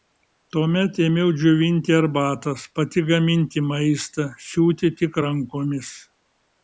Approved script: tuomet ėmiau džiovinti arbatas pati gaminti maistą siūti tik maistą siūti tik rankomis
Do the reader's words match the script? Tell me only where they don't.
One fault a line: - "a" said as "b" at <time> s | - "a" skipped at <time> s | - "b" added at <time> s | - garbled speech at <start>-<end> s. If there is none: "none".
- "maistą siūti tik" skipped at 5.2 s